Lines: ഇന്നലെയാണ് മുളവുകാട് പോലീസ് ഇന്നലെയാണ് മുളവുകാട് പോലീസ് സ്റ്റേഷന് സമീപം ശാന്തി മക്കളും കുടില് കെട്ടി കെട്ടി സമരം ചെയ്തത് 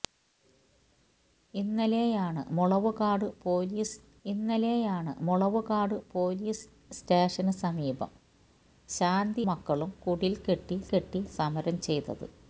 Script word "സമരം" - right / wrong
right